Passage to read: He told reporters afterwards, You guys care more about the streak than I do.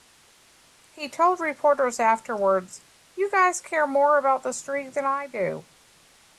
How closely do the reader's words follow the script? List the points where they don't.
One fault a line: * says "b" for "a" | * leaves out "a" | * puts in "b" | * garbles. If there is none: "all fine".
all fine